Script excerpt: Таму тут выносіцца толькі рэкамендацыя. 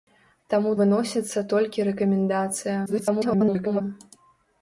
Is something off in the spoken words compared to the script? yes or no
yes